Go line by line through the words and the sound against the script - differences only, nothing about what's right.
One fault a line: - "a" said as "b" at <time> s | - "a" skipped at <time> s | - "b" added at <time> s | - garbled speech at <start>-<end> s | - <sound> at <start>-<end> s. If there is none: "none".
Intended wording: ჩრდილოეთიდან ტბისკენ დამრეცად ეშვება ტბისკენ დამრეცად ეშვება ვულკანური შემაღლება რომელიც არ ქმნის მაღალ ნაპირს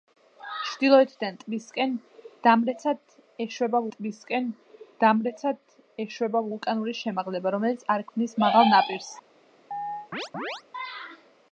- chirp at 9.7-10.6 s